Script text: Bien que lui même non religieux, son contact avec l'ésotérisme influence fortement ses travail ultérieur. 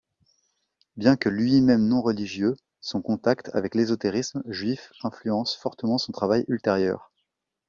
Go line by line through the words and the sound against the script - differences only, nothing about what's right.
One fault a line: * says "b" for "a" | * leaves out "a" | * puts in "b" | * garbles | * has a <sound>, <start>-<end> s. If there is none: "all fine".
* puts in "juif"
* says "son" for "ses"